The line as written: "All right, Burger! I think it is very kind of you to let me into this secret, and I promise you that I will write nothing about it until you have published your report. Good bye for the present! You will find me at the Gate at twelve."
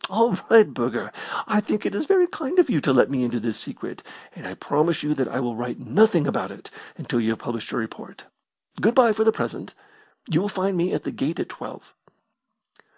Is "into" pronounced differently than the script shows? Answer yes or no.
no